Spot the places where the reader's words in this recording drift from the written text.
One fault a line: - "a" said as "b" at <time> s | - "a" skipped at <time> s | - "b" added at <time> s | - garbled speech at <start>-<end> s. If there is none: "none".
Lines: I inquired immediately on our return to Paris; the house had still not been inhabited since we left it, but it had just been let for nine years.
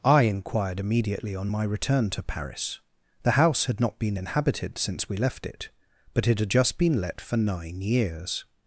- "our" said as "my" at 1.5 s
- "still" skipped at 3.8 s